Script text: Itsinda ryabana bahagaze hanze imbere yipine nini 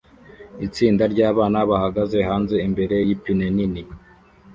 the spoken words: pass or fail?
pass